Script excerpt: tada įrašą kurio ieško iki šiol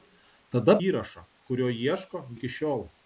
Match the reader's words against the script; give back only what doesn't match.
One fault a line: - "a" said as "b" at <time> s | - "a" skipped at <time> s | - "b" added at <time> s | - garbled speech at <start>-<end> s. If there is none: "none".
none